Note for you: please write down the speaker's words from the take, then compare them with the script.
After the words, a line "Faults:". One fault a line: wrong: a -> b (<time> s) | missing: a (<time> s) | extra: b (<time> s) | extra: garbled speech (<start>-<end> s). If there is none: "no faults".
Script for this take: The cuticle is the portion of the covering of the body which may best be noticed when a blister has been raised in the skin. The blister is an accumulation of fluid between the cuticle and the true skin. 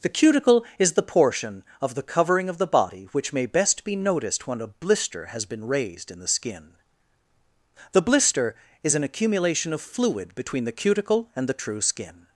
The cuticle is the portion of the covering of the body which may best be noticed when a blister has been raised in the skin. The blister is an accumulation of fluid between the cuticle and the true skin.
Faults:
no faults